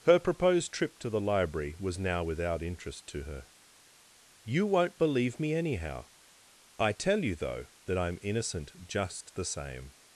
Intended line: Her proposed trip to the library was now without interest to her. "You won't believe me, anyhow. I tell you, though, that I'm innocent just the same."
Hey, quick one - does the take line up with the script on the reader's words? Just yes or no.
yes